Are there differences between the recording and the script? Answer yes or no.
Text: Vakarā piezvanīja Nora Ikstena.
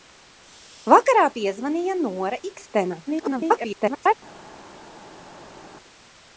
yes